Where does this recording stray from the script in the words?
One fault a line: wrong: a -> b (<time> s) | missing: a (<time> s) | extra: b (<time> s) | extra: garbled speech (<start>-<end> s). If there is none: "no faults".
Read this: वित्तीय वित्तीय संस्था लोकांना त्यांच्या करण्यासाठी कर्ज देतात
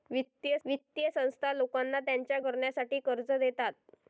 no faults